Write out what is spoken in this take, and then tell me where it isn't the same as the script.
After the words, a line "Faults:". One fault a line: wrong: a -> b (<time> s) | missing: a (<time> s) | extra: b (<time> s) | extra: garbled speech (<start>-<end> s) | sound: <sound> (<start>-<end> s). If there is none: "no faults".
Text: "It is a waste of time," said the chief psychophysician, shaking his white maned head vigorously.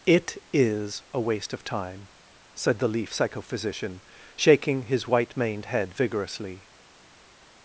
"It is a waste of time," said the leaf psychophysician, shaking his white maned head vigorously.
Faults:
wrong: chief -> leaf (2.9 s)